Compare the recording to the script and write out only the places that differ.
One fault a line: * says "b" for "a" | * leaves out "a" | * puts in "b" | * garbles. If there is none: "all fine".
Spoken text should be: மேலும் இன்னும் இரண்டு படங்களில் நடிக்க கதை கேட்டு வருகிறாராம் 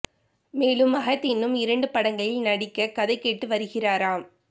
* puts in "மகத்"